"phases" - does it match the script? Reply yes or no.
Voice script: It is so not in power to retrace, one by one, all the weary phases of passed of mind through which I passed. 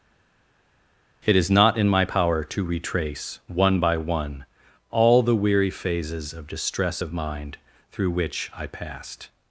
yes